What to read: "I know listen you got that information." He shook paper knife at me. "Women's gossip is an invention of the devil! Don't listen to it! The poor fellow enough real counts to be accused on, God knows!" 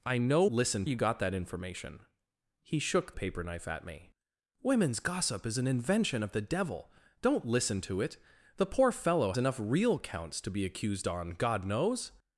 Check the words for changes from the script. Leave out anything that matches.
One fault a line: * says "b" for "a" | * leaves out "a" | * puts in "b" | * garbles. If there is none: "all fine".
all fine